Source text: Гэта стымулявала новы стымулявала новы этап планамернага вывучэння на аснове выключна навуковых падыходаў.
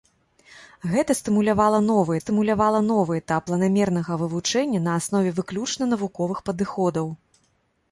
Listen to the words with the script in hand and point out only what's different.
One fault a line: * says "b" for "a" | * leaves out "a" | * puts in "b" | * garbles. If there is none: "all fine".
all fine